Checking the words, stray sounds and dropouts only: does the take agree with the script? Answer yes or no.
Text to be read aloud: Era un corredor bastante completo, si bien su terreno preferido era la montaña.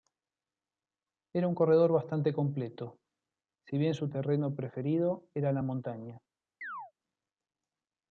no